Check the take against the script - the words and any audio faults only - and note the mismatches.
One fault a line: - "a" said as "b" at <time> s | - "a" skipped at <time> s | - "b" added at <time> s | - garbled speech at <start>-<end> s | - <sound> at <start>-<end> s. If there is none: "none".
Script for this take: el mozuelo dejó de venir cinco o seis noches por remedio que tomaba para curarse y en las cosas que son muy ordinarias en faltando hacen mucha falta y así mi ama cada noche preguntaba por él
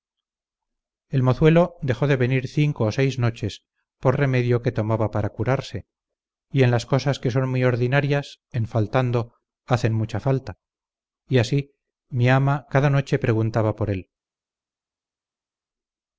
none